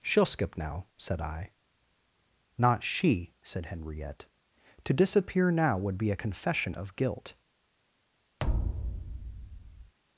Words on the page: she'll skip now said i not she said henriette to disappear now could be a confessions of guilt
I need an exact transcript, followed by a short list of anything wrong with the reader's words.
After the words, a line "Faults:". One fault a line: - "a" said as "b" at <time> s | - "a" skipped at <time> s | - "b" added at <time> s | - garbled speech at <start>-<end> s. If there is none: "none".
she'll skip now said i not she said henriette to disappear now would be a confession of guilt
Faults:
- "could" said as "would" at 5.8 s
- "confessions" said as "confession" at 6.1 s